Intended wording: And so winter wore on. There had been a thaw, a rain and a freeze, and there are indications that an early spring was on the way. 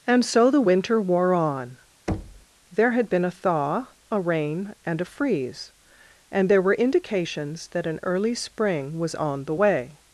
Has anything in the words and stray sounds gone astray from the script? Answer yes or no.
yes